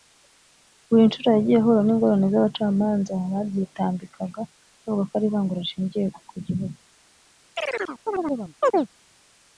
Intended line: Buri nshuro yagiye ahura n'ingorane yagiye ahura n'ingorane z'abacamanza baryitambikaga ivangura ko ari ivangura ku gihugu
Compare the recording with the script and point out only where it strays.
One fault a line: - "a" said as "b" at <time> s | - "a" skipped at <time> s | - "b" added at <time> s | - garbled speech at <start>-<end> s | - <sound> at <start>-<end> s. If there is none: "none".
- "yagiye ahura n'ingorane" skipped at 2.3 s
- "ivangura" said as "bavuga" at 4.8 s
- "rishingiye" added at 5.6 s
- chirp at 7.6-8.9 s